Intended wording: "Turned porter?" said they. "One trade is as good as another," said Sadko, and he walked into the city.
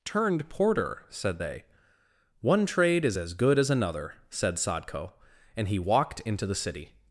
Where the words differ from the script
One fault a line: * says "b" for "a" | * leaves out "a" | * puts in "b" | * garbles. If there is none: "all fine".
all fine